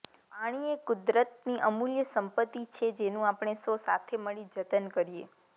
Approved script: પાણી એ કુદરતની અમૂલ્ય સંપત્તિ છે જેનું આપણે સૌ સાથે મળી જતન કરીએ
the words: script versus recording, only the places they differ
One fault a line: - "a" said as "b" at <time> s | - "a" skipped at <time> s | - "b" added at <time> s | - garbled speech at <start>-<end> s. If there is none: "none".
none